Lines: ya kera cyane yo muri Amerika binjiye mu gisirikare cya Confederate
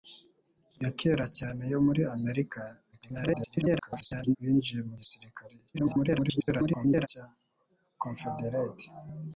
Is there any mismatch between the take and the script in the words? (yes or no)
yes